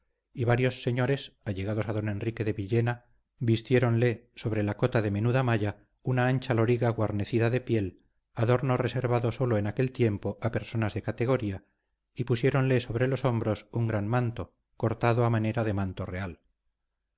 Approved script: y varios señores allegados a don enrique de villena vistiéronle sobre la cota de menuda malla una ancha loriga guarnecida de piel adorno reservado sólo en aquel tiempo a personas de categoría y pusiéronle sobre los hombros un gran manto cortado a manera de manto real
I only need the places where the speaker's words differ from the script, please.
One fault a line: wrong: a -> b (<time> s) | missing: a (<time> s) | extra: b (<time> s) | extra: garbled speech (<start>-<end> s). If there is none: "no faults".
no faults